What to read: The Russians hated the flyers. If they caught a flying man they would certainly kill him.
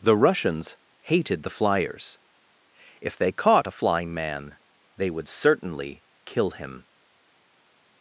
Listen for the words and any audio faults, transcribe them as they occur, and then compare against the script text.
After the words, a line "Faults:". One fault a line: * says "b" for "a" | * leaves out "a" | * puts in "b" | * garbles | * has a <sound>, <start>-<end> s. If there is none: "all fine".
The Russians hated the flyers. If they caught a flying man they would certainly kill him.
Faults:
all fine